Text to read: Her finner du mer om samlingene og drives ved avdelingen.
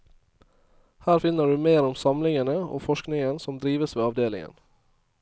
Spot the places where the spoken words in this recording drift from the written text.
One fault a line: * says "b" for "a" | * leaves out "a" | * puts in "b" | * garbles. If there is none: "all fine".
* puts in "forskningen som"